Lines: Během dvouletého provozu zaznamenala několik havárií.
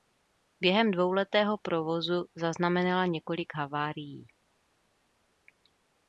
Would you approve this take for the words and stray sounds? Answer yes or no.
yes